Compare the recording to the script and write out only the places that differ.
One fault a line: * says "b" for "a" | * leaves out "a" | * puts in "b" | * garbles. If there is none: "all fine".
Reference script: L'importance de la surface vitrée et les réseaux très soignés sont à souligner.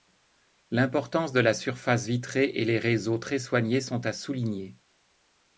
all fine